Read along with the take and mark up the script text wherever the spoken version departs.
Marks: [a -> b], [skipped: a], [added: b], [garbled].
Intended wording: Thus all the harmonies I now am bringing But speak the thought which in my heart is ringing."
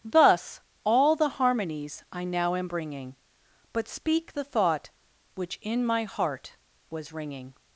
Thus all the harmonies I now am bringing But speak the thought which in my heart [is -> was] ringing."